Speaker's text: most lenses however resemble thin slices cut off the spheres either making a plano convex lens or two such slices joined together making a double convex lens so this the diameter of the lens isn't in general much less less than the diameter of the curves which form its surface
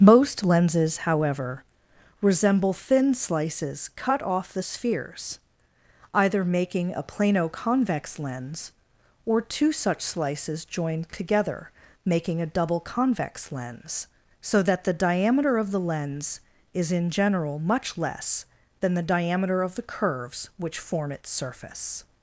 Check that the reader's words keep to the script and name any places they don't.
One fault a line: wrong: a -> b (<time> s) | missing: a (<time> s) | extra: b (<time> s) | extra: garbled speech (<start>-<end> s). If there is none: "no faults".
wrong: this -> that (14.6 s)
wrong: isn't -> is (16.7 s)
missing: less (18.4 s)